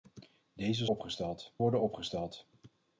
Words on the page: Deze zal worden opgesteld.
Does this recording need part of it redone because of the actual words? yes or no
yes